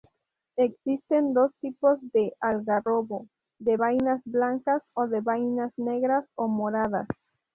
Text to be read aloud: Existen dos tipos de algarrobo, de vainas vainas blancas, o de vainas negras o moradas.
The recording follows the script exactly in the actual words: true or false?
false